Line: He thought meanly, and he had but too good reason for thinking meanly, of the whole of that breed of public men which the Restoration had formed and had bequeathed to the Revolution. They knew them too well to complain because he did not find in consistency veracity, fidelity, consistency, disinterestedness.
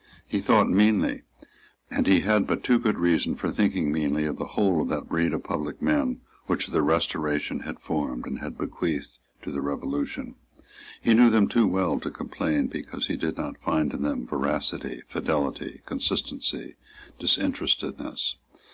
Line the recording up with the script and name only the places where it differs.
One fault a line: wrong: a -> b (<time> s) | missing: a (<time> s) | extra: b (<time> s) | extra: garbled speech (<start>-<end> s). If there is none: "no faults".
wrong: They -> He (11.0 s)
wrong: consistency -> them (14.0 s)